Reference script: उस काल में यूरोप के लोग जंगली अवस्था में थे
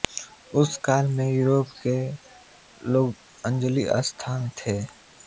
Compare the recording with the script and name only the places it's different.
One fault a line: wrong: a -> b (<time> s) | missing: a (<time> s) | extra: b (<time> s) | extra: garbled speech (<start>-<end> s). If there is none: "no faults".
no faults